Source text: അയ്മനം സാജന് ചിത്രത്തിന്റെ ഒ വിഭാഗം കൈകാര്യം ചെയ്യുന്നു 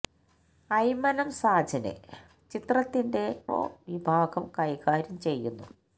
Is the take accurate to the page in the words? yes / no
yes